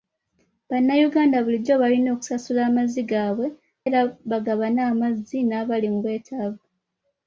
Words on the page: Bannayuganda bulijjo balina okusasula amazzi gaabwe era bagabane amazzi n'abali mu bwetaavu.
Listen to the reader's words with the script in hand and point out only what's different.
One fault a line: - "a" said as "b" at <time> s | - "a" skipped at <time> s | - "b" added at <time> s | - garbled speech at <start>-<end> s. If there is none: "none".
none